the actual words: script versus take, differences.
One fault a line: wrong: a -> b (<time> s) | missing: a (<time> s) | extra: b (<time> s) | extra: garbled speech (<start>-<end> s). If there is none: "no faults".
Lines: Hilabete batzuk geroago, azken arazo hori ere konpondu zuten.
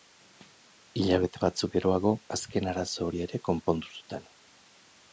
no faults